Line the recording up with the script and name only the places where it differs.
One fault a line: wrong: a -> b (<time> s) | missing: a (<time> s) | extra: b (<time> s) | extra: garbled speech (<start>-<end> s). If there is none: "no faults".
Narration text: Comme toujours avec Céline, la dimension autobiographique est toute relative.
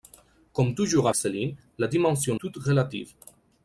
missing: avec (1.1 s)
missing: autobiographique est (2.4 s)